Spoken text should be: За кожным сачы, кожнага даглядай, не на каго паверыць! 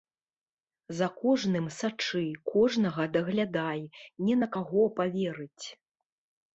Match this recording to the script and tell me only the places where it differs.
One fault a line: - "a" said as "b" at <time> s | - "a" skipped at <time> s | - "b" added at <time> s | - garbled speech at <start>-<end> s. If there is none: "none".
none